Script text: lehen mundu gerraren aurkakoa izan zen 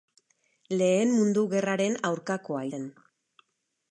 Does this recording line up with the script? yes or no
no